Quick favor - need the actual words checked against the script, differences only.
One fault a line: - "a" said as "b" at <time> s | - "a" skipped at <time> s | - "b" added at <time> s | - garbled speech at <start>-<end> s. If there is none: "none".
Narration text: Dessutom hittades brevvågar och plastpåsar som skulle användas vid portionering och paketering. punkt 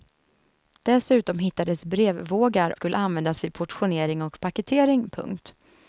- "och plastpåsar som" skipped at 2.8 s